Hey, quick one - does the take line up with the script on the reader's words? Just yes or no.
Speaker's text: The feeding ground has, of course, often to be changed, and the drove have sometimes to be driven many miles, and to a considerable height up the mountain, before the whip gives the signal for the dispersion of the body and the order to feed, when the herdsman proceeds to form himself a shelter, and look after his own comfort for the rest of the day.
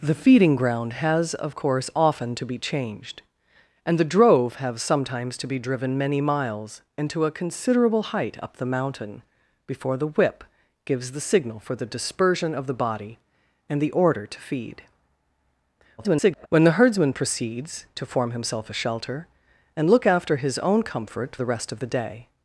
no